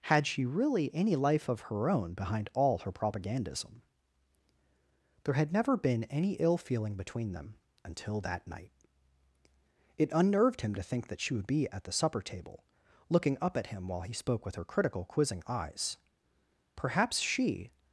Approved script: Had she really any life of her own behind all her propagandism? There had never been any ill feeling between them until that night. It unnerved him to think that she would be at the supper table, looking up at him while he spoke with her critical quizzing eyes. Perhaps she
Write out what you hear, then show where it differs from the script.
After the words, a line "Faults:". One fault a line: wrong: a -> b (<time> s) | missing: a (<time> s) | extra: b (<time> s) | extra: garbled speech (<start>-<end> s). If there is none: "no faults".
Had she really any life of her own behind all her propagandism? There had never been any ill feeling between them until that night. It unnerved him to think that she would be at the supper table, looking up at him while he spoke with her critical quizzing eyes. Perhaps she
Faults:
no faults